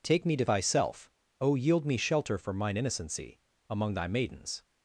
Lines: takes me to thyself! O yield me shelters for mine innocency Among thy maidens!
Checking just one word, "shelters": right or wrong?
wrong